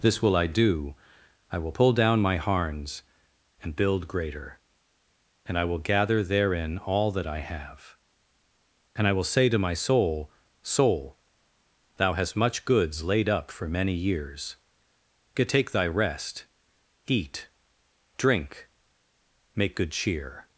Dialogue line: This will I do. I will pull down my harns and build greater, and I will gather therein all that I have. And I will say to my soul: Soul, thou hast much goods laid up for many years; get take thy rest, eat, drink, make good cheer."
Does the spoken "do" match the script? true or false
true